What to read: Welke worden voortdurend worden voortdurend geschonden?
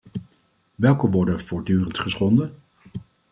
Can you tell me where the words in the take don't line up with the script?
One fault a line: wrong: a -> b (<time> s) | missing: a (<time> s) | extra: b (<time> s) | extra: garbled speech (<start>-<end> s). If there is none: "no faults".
missing: worden voortdurend (2.0 s)